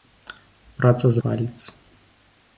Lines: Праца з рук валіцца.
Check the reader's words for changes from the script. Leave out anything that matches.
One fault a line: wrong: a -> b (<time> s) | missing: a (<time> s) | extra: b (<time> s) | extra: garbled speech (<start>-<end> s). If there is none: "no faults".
missing: рук (1.2 s)